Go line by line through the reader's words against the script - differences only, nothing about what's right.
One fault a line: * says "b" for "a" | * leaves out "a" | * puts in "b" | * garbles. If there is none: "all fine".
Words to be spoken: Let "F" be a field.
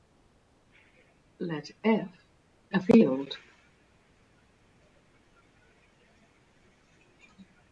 * leaves out "be"